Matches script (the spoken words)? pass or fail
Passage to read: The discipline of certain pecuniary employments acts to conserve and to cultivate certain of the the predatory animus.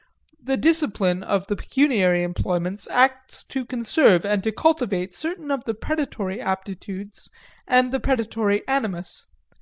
fail